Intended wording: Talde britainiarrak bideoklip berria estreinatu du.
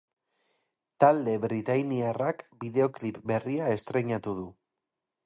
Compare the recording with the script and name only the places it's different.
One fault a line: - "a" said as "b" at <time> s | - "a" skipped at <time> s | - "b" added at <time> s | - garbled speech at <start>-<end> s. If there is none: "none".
none